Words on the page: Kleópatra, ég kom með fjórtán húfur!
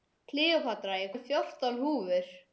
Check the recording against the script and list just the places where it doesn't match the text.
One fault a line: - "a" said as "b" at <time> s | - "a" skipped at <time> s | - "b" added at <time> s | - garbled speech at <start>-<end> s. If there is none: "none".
- "kom" skipped at 1.1 s